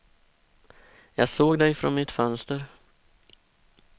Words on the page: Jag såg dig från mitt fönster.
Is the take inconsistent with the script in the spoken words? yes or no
no